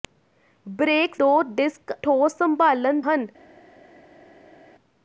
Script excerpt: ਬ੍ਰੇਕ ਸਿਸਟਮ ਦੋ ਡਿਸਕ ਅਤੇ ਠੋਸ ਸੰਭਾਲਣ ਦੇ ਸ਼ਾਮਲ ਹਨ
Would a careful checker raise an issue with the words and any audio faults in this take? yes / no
yes